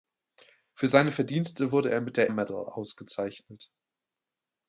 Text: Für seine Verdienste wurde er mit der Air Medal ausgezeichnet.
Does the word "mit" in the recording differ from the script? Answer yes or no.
no